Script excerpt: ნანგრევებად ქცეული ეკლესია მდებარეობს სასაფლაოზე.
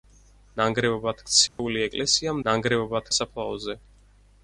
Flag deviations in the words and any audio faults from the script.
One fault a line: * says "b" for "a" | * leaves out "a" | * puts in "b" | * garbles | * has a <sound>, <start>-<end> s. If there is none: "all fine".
* has a dropout, 1.5-1.6 s
* says "ნანგრევებად" for "მდებარეობს"